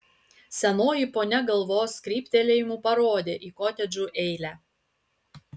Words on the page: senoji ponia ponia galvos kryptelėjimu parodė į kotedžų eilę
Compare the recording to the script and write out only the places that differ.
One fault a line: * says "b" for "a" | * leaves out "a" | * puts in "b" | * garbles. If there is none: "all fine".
* leaves out "ponia"